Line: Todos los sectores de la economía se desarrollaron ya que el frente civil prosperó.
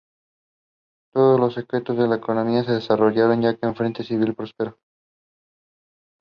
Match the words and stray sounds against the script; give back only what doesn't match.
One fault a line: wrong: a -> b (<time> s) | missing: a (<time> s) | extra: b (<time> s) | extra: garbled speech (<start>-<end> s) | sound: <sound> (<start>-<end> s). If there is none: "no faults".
no faults